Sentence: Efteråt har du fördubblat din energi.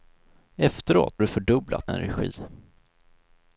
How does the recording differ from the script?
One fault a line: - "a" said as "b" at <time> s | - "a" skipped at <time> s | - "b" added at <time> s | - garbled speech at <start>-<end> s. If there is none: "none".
- "har" skipped at 1.2 s
- "din" skipped at 1.9 s